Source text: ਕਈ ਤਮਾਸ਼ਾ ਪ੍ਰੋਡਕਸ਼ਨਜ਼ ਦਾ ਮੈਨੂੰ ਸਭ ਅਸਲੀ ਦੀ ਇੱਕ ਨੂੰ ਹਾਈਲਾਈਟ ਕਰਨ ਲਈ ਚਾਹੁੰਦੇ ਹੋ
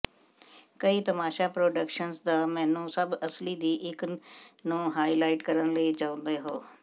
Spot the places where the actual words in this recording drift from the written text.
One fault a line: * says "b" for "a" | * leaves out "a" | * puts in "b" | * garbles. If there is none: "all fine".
all fine